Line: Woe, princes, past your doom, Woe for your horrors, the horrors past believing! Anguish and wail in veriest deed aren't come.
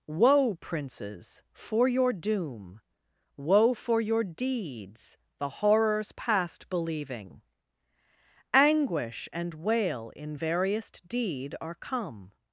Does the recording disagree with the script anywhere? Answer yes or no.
yes